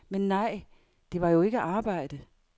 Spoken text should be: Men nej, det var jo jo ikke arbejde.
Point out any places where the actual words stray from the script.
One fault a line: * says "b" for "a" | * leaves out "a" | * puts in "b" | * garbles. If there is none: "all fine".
* leaves out "jo"